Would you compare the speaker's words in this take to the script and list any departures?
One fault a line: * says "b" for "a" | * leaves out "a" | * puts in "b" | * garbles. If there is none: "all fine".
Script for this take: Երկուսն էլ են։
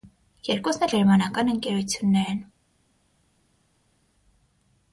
* puts in "գերմանական ընկերություններ"